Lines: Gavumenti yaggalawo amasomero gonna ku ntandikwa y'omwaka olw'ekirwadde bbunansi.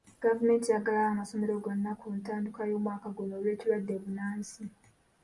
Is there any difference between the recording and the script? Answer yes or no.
yes